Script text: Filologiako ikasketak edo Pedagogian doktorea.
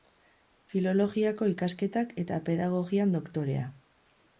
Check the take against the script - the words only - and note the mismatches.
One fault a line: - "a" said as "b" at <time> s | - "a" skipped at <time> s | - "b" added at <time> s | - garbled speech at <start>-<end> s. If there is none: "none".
- "edo" said as "eta" at 2.3 s